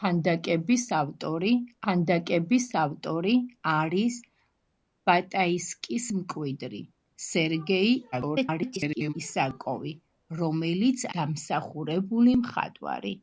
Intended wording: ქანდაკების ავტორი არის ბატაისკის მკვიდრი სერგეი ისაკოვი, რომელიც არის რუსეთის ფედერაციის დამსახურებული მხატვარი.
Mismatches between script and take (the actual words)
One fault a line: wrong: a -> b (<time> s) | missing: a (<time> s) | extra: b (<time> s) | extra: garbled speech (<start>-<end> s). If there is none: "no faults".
extra: ქანდაკების ავტორი (1.8 s)
extra: garbled speech (8.1-9.1 s)
missing: არის რუსეთის ფედერაციის (11.0 s)